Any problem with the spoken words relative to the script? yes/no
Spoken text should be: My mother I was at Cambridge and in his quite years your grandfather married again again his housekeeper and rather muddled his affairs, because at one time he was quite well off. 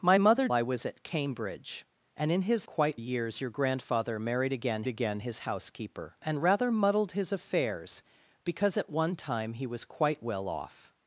no